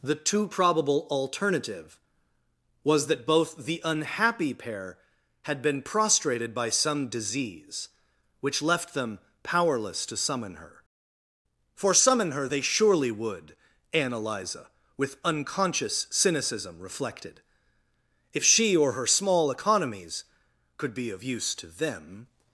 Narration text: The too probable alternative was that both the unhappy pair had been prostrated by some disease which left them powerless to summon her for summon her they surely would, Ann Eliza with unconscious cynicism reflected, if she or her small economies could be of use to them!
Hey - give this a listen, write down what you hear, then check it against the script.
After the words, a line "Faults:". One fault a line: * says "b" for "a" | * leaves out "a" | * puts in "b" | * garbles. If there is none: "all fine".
The too probable alternative was that both the unhappy pair had been prostrated by some disease which left them powerless to summon her for summon her they surely would, Ann Eliza with unconscious cynicism reflected, if she or her small economies could be of use to them!
Faults:
all fine